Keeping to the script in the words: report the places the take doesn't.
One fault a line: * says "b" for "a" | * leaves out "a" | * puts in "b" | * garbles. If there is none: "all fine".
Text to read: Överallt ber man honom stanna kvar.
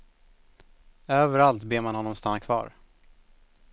all fine